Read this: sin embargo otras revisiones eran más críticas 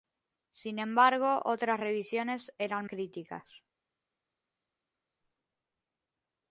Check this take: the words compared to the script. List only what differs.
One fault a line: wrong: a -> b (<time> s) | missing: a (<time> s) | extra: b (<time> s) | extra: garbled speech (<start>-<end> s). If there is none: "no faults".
missing: más (2.9 s)